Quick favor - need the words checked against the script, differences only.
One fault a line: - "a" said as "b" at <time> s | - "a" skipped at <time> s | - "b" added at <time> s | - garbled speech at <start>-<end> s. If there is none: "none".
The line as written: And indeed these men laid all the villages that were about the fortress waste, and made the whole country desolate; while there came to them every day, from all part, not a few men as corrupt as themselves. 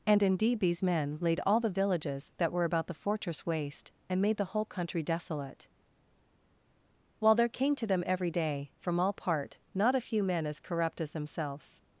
none